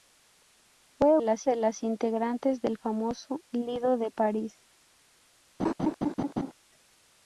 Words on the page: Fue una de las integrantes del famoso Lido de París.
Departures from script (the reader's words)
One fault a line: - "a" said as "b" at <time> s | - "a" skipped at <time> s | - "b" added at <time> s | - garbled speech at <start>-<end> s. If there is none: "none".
- "una" said as "las" at 1.2 s